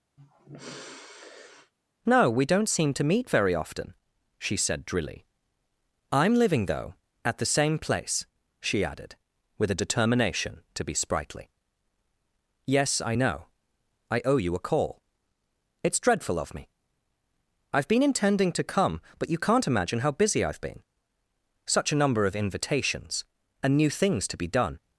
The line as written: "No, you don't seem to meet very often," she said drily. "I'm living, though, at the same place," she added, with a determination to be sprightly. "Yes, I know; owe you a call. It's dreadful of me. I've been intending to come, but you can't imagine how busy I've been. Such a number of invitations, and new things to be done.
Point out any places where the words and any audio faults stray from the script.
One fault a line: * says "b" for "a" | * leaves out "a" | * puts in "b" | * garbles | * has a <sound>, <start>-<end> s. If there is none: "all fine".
* has a sigh, 0.2-1.7 s
* says "we" for "you"
* puts in "I"